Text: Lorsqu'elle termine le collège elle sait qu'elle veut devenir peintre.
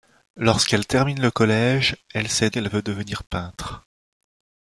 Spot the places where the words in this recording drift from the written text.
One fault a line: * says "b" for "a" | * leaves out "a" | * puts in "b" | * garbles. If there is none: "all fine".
all fine